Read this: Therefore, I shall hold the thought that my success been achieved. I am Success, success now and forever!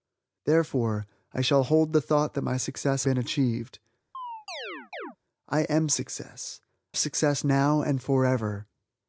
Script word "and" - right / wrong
right